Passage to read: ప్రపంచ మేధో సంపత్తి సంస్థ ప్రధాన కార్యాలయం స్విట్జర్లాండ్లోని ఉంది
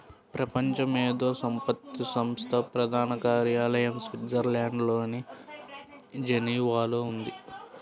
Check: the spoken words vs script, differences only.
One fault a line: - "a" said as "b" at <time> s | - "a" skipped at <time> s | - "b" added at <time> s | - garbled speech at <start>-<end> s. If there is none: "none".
- "జెనీవాలో" added at 6.3 s